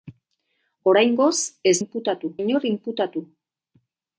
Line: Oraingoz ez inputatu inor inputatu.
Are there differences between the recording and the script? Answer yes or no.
no